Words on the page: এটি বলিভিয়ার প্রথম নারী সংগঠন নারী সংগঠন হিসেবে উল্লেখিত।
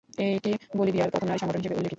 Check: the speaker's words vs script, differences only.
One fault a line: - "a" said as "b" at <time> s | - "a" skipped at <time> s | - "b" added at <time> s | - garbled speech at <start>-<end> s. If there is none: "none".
- "নারী সংগঠন" skipped at 1.6 s